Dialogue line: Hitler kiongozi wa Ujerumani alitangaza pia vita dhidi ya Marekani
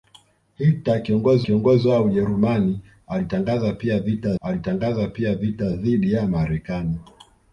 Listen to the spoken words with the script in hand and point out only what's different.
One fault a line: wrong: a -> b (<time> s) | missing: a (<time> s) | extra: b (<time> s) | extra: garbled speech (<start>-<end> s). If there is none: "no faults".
extra: kiongozi (1.4 s)
extra: alitangaza pia vita (4.4 s)